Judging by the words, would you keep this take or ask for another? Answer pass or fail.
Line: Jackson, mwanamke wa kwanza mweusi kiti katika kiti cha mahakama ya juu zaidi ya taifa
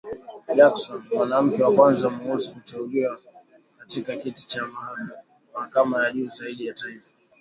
fail